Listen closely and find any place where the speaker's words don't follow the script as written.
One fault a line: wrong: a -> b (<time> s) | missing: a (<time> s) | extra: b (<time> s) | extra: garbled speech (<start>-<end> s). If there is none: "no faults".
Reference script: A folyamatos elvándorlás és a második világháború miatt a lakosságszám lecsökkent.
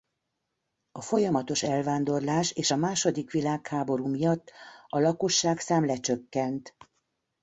no faults